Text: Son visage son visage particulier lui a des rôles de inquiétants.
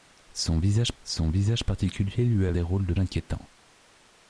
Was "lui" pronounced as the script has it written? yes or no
yes